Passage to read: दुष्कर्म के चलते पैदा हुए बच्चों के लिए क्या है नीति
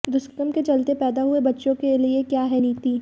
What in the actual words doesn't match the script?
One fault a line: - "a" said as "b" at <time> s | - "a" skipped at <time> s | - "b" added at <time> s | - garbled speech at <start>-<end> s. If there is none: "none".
none